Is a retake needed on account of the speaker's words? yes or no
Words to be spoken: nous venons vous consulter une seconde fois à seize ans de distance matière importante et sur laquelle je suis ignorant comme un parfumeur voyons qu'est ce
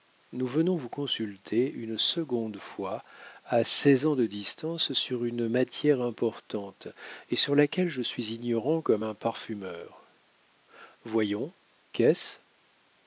yes